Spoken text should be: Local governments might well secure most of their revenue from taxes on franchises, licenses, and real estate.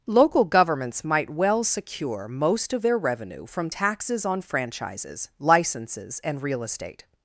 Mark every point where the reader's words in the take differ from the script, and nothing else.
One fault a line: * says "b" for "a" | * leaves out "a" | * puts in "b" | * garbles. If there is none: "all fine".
all fine